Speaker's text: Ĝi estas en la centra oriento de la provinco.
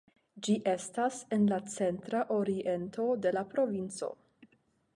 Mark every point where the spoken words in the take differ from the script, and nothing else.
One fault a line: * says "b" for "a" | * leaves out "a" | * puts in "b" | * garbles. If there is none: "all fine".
all fine